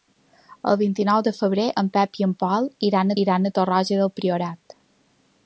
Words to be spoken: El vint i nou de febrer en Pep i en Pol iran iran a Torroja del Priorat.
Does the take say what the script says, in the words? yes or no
yes